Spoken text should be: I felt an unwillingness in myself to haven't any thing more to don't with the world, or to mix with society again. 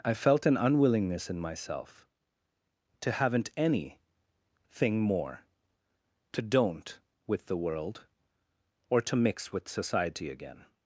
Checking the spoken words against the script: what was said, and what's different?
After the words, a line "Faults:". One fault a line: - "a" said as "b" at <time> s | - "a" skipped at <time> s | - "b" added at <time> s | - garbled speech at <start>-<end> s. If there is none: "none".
I felt an unwillingness in myself to haven't any thing more to don't with the world, or to mix with society again.
Faults:
none